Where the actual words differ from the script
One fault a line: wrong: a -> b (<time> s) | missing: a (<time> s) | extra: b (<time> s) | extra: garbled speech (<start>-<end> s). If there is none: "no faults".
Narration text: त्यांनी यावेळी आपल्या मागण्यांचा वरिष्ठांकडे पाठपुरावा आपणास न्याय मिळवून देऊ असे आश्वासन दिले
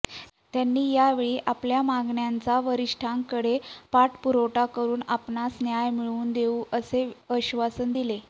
extra: करून (4.7 s)